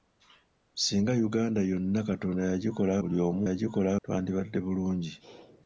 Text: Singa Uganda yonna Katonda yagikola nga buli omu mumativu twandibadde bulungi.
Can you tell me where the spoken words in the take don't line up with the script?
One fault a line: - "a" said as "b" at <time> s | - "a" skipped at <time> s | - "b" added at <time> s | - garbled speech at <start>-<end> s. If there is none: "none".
- "nga" skipped at 2.9 s
- "mumativu" said as "yagikola" at 3.5 s